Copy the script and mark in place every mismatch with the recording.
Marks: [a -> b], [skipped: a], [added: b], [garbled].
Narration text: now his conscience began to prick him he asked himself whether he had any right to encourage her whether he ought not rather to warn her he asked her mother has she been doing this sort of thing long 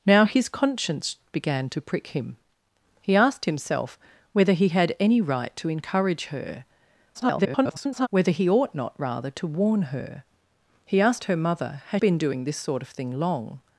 now his conscience began to prick him he asked himself whether he had any right to encourage her [garbled] whether he ought not rather to warn her he asked her mother has [skipped: she] been doing this sort of thing long